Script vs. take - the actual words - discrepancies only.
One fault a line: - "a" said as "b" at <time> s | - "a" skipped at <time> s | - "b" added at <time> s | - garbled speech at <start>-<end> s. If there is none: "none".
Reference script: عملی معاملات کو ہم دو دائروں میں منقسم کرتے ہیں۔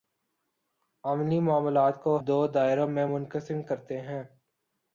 - "ہم" skipped at 2.2 s